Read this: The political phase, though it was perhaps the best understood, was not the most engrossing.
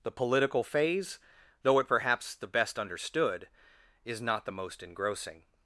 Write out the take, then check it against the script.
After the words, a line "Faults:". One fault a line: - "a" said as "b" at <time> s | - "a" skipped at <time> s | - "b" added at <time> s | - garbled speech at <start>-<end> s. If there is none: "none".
The political phase, though it perhaps the best understood, is not the most engrossing.
Faults:
- "was" skipped at 1.9 s
- "was" said as "is" at 4.0 s